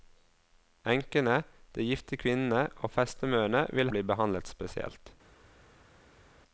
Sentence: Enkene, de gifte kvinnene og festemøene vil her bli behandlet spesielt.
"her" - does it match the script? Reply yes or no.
no